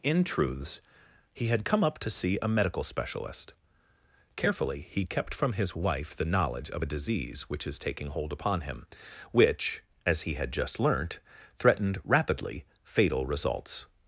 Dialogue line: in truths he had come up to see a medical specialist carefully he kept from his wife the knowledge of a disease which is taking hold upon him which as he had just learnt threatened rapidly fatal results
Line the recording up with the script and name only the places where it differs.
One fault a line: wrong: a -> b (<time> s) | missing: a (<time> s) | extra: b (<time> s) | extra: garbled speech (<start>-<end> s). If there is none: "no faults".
no faults